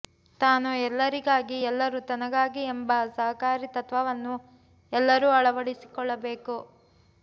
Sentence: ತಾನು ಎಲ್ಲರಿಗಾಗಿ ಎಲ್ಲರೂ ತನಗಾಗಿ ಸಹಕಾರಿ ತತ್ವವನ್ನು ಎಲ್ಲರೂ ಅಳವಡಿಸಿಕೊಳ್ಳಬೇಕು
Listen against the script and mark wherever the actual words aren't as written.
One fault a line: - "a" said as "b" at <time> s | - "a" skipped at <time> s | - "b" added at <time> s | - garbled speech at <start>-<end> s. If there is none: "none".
- "ಎಂಬ" added at 2.7 s